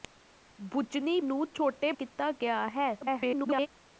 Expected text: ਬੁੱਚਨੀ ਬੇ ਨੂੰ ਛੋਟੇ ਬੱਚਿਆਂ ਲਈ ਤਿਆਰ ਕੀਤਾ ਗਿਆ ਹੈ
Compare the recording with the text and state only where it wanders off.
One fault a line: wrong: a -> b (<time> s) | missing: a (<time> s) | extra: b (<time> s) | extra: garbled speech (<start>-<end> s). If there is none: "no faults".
missing: ਬੇ (1.2 s)
missing: ਬੱਚਿਆਂ ਲਈ ਤਿਆਰ (1.9 s)
extra: garbled speech (3.0-3.7 s)